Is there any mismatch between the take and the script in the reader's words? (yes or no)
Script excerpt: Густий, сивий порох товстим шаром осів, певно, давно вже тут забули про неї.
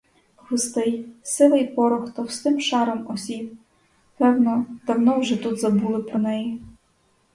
no